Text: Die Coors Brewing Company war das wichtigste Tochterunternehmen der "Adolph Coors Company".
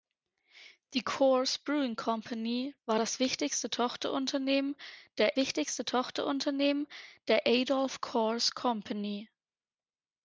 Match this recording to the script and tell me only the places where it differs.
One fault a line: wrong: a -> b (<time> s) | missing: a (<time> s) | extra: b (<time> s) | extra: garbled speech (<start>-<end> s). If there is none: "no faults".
extra: wichtigste Tochterunternehmen der (5.4 s)